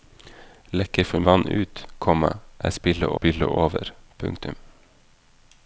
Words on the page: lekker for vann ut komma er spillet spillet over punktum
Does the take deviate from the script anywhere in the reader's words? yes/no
no